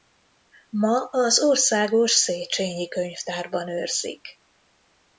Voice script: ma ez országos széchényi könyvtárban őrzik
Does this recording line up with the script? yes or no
no